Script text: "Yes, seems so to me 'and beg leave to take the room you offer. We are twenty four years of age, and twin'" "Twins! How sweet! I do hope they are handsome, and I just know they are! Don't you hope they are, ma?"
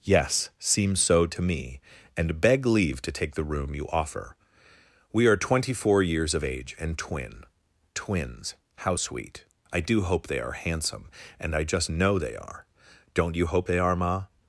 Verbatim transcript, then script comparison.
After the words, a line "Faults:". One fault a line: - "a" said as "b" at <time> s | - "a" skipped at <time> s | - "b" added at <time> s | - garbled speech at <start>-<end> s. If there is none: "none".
"Yes, seems so to me 'and beg leave to take the room you offer. We are twenty four years of age, and twin'" "Twins! How sweet! I do hope they are handsome, and I just know they are! Don't you hope they are, ma?"
Faults:
none